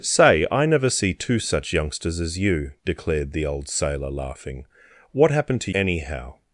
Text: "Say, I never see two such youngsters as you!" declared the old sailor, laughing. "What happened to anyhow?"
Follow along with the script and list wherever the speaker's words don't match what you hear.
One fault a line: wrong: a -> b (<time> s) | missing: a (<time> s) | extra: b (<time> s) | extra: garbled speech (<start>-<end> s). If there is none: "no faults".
no faults